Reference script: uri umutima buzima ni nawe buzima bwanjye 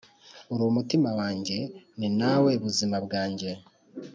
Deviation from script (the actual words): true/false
true